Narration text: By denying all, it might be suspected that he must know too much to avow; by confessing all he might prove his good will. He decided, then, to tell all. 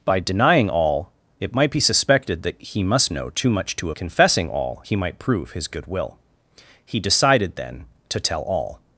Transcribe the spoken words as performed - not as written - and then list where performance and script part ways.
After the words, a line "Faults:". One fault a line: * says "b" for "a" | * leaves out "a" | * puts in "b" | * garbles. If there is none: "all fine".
By denying all, it might be suspected that he must know too much to confessing all he might prove his good will. He decided, then, to tell all.
Faults:
* leaves out "avow by"